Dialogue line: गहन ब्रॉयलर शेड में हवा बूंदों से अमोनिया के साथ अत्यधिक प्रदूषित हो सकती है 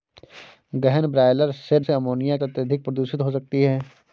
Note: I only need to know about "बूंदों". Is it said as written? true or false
false